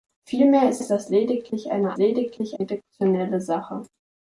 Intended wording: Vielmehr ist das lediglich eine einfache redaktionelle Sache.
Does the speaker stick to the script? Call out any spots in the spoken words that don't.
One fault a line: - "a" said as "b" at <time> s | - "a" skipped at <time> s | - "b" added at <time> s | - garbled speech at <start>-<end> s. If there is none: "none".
- "ist" added at 0.8 s
- "einfache" said as "lediglich" at 2.0 s